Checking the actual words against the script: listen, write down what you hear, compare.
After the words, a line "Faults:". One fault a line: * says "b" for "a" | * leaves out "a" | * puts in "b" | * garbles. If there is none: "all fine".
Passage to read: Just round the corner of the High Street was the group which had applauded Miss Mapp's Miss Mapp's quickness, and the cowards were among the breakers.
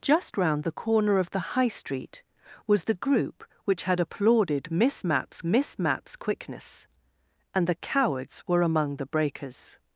Just round the corner of the High Street was the group which had applauded Miss Mapp's Miss Mapp's quickness, and the cowards were among the breakers.
Faults:
all fine